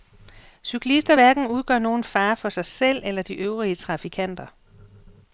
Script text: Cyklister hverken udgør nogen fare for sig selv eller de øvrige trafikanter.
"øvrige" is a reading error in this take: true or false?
false